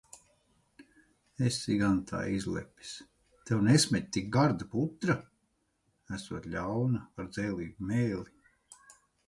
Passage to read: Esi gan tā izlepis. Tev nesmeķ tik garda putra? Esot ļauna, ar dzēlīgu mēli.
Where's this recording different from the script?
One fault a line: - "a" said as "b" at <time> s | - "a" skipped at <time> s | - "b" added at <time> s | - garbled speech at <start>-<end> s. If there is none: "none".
none